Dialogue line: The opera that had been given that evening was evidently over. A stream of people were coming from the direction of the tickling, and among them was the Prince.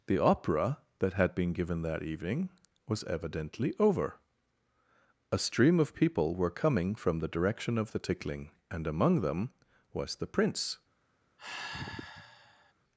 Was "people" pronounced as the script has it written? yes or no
yes